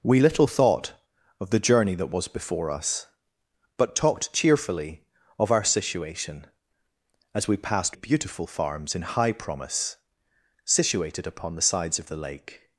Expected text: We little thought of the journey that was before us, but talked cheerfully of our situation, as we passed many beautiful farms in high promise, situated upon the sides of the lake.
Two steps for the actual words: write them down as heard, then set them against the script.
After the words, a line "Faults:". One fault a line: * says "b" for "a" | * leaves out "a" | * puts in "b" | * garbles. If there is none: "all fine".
We little thought of the journey that was before us, but talked cheerfully of our situation, as we passed beautiful farms in high promise, situated upon the sides of the lake.
Faults:
* leaves out "many"